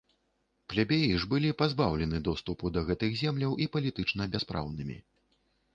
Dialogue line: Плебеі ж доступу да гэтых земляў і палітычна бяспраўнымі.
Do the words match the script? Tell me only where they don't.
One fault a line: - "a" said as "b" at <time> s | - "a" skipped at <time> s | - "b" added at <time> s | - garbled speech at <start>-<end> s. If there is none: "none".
- "былі пазбаўлены" added at 1.3 s